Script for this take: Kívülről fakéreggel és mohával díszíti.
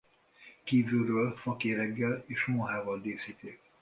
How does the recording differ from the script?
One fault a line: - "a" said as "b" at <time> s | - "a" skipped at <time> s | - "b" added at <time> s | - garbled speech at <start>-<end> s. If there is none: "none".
none